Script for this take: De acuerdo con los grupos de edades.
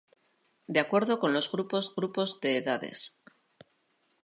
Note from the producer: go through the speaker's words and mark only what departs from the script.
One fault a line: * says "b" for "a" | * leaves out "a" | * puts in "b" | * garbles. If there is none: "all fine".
* puts in "grupos"